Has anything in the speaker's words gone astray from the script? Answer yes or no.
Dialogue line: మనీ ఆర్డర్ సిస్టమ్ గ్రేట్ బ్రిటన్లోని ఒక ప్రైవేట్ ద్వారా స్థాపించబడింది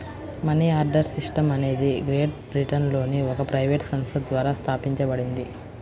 yes